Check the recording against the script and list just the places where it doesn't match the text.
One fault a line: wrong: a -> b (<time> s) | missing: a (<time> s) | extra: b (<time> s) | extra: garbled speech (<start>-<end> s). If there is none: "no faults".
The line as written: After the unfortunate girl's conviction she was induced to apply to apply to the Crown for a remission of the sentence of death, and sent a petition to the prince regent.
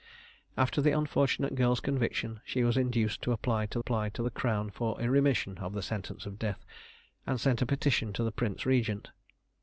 no faults